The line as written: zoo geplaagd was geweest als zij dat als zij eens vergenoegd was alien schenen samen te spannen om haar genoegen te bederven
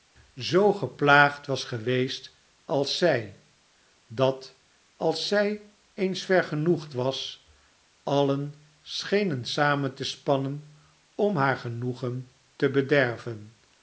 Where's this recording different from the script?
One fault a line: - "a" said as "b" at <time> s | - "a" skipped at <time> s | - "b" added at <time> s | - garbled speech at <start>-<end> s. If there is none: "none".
none